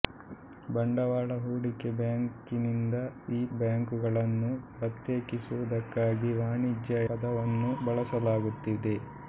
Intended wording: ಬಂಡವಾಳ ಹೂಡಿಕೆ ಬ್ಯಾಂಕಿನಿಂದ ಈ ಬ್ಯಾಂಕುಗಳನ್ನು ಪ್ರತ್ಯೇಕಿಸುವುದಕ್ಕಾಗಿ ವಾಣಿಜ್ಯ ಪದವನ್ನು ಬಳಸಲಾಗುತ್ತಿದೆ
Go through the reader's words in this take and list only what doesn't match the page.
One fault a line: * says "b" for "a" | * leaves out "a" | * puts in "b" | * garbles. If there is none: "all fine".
all fine